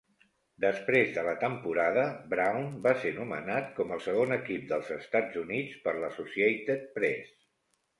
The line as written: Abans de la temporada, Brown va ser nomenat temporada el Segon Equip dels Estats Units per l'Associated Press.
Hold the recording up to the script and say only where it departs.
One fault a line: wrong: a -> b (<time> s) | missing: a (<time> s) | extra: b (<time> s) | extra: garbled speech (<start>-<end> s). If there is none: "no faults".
wrong: Abans -> Després (0.6 s)
wrong: temporada -> com (3.8 s)